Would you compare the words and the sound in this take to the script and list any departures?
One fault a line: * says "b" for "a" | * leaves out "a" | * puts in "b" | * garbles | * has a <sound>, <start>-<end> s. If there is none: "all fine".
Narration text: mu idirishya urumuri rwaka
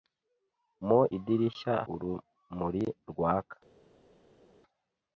all fine